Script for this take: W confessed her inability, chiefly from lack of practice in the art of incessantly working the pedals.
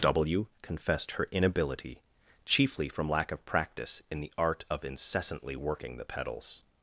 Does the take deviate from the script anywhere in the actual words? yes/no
no